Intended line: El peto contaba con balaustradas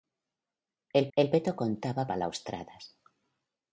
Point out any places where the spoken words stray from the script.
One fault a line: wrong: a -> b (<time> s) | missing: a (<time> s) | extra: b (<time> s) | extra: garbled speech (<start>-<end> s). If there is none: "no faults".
extra: el (1.2 s)
missing: con (2.1 s)